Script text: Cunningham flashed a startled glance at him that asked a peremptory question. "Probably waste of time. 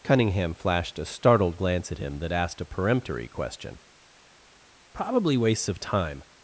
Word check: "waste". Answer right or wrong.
wrong